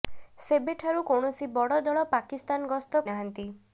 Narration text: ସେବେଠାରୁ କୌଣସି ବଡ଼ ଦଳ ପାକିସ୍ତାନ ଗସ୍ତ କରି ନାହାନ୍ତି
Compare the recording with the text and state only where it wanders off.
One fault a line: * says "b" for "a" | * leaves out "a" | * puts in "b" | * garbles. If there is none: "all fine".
* leaves out "କରି"